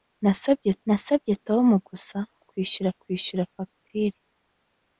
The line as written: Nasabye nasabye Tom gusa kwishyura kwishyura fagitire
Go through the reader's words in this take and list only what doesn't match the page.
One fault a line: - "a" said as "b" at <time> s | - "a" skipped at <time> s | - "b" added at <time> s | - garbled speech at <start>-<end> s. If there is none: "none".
none